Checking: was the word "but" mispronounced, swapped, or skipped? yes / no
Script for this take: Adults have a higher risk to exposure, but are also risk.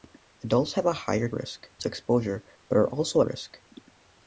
no